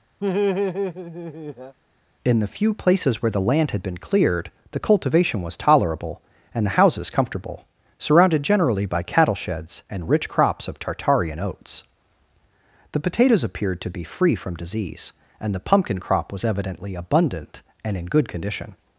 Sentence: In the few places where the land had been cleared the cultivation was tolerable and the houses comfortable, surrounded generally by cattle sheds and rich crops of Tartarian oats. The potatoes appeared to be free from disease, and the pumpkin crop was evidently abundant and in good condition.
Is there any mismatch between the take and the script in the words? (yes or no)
no